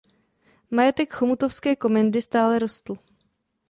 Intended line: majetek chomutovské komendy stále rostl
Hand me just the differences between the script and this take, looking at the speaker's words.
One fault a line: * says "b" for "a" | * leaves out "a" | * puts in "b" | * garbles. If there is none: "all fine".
all fine